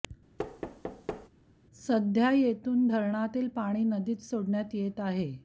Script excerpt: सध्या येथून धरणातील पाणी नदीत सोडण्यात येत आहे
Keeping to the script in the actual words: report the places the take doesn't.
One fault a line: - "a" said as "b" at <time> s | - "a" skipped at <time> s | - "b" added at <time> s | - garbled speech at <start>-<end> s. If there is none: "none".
none